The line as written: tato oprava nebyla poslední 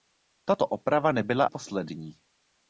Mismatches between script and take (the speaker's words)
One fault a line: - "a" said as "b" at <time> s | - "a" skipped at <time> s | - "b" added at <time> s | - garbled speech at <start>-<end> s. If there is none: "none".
none